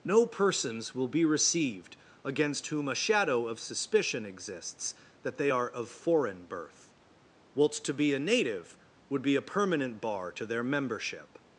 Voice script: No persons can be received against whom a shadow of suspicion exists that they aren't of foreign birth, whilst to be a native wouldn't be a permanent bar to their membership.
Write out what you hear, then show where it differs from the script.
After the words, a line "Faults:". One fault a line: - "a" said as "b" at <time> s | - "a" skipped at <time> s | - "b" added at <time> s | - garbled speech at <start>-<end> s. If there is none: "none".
No persons will be received against whom a shadow of suspicion exists that they are of foreign birth, whilst to be a native would be a permanent bar to their membership.
Faults:
- "can" said as "will" at 0.9 s
- "aren't" said as "are" at 5.5 s
- "wouldn't" said as "would" at 9.1 s